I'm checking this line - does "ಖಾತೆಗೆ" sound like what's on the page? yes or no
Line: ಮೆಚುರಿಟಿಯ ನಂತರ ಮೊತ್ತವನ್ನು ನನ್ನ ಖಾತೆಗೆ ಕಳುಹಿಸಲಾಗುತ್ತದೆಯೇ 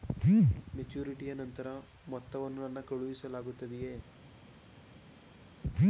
no